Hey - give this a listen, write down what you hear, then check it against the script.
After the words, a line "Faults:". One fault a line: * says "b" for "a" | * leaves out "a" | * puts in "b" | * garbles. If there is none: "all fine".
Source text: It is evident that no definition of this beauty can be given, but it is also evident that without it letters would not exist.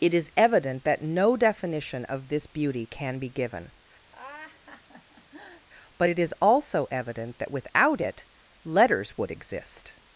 It is evident that no definition of this beauty can be given, but it is also evident that without it letters would exist.
Faults:
* leaves out "not"